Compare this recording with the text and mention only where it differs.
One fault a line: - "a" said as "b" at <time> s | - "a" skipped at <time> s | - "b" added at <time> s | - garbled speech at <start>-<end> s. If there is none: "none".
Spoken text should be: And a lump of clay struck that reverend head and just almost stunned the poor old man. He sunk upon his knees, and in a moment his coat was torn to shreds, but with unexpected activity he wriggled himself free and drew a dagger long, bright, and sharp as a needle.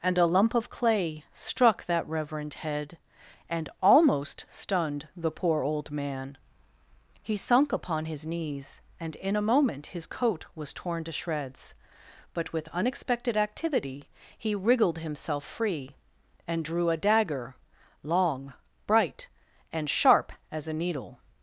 - "just" skipped at 3.7 s